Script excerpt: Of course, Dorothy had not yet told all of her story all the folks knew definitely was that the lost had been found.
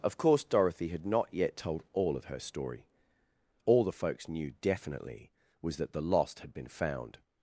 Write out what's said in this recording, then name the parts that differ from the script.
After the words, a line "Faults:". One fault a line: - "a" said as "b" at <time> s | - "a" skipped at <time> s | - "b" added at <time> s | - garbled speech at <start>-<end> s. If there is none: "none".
Of course, Dorothy had not yet told all of her story all the folks knew definitely was that the lost had been found.
Faults:
none